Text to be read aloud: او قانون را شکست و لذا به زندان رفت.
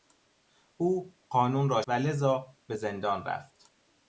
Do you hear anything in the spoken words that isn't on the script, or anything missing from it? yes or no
yes